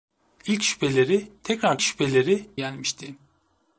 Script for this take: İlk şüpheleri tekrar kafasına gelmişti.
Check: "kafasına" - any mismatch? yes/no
yes